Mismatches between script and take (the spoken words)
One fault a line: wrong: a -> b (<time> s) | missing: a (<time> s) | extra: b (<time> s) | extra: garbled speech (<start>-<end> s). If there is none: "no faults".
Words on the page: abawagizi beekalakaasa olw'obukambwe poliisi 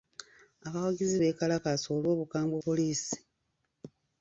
no faults